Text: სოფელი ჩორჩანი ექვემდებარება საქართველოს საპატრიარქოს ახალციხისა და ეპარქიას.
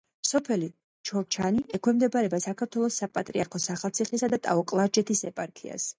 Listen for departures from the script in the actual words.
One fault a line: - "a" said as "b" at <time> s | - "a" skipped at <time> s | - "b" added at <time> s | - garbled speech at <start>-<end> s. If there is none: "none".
- "ტაო კლარჯეთის" added at 4.5 s